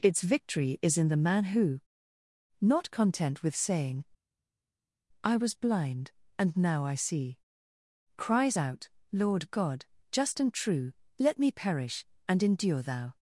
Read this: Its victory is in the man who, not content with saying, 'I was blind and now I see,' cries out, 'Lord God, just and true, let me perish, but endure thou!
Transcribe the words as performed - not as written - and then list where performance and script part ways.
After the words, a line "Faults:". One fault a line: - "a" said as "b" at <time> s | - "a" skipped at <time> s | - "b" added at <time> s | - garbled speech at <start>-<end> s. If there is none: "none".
Its victory is in the man who, not content with saying, 'I was blind and now I see,' cries out, 'Lord God, just and true, let me perish, and endure thou!
Faults:
- "but" said as "and" at 12.3 s